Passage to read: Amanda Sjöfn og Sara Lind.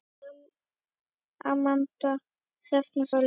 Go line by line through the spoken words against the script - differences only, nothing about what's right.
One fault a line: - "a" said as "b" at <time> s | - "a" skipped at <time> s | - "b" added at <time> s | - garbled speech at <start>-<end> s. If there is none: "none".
- "Sara" skipped at 3.1 s